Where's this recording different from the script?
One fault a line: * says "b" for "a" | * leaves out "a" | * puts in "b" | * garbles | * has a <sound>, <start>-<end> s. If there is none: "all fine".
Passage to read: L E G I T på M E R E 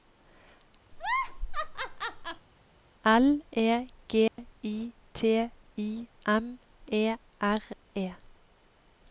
* has a laugh, 0.9-2.5 s
* has a dropout, 4.3-4.4 s
* says "I" for "på"